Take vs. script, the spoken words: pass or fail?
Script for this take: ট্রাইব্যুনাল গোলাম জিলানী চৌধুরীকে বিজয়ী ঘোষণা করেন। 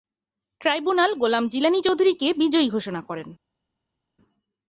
pass